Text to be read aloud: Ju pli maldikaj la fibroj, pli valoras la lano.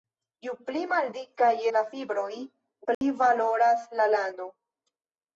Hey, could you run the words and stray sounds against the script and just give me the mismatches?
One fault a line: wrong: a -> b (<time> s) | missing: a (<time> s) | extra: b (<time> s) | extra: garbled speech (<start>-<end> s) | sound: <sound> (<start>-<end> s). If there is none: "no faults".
sound: dropout (2.9-3.0 s)